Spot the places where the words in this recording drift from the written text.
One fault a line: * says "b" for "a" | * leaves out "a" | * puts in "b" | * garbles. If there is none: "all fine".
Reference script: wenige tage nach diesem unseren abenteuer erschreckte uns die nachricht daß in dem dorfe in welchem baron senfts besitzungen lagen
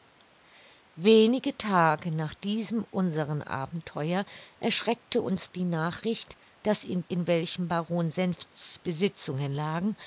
* leaves out "dem dorfe"